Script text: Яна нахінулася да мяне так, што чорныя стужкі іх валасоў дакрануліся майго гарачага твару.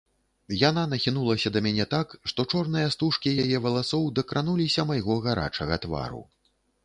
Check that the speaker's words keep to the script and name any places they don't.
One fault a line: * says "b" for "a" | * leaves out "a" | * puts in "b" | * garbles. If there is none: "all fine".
* says "яе" for "іх"